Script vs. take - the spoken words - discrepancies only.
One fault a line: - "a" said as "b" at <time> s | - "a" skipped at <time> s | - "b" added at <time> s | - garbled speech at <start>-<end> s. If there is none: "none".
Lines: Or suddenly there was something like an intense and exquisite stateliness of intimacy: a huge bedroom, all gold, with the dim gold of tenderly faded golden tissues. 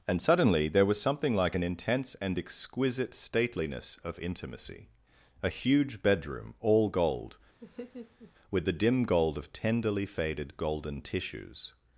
- "Or" said as "And" at 0.1 s